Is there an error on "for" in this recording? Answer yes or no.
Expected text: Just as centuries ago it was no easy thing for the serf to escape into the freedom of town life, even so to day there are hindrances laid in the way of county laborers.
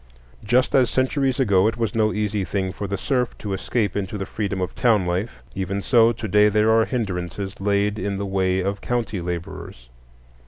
no